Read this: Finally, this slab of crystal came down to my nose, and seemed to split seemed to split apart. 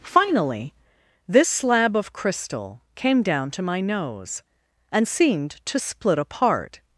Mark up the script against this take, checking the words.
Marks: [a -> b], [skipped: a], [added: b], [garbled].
Finally, this slab of crystal came down to my nose, and seemed to split [skipped: seemed to split] apart.